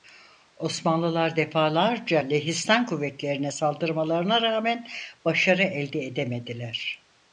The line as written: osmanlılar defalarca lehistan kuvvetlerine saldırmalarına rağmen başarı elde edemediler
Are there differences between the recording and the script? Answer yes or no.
no